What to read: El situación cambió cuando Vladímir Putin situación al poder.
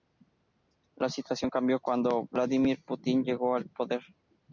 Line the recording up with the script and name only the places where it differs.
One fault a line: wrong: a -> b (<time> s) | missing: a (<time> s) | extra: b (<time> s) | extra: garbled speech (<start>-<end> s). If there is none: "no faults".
wrong: El -> La (0.9 s)
wrong: situación -> llegó (3.2 s)